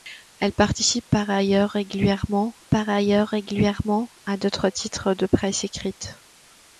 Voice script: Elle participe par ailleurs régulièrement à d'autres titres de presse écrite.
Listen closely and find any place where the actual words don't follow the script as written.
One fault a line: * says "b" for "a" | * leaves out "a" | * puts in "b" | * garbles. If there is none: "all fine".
* puts in "par ailleurs régulièrement"